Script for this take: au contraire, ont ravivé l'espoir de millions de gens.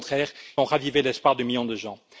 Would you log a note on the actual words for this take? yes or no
no